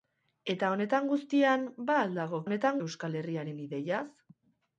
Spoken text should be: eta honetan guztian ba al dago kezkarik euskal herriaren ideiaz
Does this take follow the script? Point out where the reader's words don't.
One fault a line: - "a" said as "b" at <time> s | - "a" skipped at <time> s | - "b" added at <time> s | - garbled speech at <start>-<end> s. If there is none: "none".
- "kezkarik" said as "honetan" at 2.5 s